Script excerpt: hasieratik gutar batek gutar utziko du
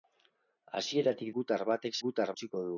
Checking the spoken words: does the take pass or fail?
pass